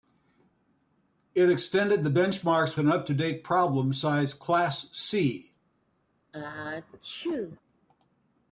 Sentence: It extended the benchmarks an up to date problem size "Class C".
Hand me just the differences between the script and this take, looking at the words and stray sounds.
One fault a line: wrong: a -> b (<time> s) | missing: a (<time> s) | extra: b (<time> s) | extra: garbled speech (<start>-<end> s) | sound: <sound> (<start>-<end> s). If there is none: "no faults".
sound: sneeze (6.3-7.6 s)